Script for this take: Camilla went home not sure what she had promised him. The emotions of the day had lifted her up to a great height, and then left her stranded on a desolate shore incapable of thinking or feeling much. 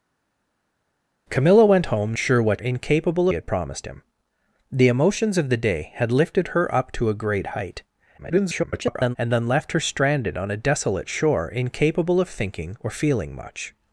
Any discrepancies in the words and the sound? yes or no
yes